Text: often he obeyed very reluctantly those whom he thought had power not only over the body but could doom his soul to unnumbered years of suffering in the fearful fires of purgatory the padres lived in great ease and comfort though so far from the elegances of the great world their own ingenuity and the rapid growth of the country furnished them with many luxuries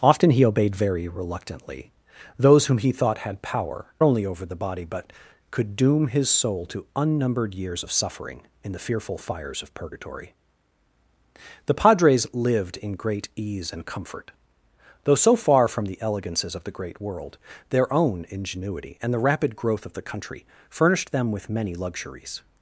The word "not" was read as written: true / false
false